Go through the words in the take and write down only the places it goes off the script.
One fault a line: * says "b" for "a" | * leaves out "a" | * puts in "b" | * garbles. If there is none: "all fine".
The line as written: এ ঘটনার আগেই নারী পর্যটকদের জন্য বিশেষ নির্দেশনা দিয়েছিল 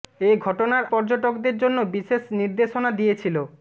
* leaves out "আগেই নারী"